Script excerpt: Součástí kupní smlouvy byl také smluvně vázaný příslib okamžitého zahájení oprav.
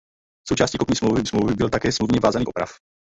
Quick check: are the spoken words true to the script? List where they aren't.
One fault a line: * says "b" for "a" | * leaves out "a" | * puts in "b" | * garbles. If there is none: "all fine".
* puts in "smlouvy"
* leaves out "příslib okamžitého zahájení"